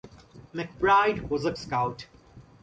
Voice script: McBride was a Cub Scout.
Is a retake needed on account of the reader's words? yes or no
yes